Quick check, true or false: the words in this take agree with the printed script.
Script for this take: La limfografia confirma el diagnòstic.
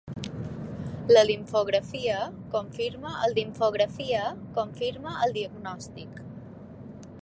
false